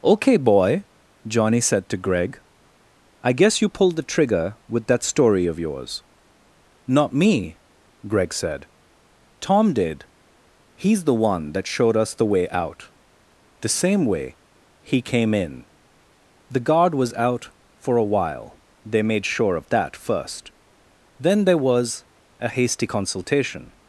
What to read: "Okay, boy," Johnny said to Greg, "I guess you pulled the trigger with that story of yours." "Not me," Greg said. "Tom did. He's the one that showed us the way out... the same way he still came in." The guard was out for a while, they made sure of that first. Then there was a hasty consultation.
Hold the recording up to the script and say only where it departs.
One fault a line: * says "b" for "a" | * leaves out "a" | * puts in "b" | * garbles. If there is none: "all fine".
* leaves out "still"